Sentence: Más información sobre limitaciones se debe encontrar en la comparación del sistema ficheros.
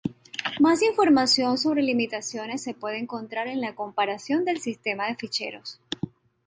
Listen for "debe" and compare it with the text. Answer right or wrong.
wrong